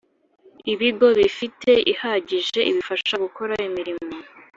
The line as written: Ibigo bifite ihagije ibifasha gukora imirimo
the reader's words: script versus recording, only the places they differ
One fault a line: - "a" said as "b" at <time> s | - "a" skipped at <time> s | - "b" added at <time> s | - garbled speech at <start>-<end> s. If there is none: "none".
none